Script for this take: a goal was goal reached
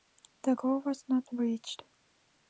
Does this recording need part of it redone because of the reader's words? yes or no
yes